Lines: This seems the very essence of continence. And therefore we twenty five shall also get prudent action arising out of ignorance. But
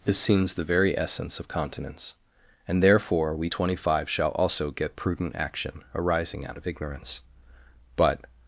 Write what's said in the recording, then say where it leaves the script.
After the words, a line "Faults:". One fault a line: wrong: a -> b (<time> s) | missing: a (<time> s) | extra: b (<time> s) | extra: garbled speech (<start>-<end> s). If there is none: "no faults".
This seems the very essence of continence. And therefore we twenty five shall also get prudent action arising out of ignorance. But
Faults:
no faults